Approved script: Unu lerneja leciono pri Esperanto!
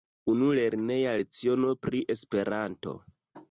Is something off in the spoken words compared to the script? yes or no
no